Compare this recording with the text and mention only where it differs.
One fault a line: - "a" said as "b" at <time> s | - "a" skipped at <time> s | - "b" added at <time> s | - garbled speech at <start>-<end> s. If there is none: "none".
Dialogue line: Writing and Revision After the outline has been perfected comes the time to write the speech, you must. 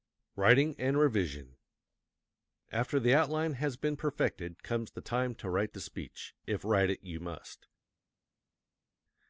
- "if write it" added at 6.5 s